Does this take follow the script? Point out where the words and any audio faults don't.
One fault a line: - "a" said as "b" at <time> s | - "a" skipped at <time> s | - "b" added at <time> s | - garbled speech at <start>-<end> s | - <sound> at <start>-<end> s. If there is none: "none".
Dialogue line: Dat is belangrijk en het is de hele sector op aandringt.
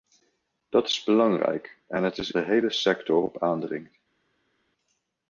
none